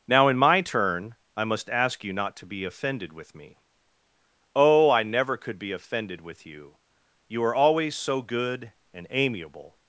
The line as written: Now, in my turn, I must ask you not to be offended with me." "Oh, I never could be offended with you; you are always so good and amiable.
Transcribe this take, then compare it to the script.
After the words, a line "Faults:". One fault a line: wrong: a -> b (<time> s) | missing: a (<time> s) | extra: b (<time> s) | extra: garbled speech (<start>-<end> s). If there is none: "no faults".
Now, in my turn, I must ask you not to be offended with me." "Oh, I never could be offended with you; you are always so good and amiable.
Faults:
no faults